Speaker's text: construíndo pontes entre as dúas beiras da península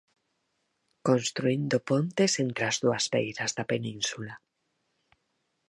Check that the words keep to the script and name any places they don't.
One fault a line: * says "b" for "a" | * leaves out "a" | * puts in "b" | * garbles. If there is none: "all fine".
all fine